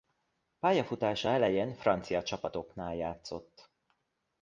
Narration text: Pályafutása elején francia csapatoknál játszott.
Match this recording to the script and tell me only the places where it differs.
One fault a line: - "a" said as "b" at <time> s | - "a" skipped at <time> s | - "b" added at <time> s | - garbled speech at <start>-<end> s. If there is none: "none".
none